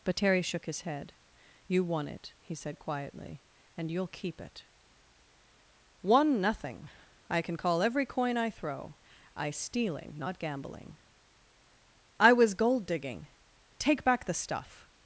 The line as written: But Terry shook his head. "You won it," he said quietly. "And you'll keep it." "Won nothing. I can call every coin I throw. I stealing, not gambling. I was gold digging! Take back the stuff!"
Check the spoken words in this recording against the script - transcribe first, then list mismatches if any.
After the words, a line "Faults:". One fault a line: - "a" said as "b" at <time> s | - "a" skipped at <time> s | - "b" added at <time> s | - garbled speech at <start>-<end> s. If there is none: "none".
But Terry shook his head. "You won it," he said quietly. "And you'll keep it." "Won nothing. I can call every coin I throw. I stealing, not gambling. I was gold digging! Take back the stuff!"
Faults:
none